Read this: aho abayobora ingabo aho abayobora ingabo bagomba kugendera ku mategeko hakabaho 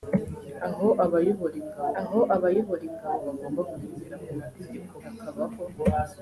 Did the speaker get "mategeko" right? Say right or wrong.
right